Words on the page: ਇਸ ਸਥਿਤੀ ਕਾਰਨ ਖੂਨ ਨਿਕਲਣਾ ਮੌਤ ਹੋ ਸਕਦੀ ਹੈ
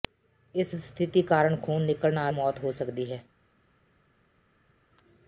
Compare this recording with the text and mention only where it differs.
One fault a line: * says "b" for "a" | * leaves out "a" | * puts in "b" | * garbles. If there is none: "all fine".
all fine